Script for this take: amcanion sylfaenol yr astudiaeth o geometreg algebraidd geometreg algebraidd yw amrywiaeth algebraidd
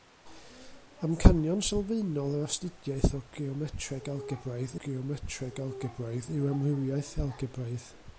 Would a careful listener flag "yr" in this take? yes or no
no